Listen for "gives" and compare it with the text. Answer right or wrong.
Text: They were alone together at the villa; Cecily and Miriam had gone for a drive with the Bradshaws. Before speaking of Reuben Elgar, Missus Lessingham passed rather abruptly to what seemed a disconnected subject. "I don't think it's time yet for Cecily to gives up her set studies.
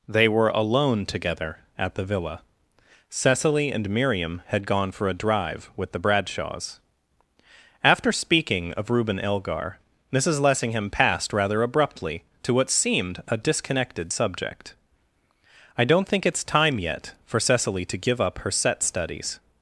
wrong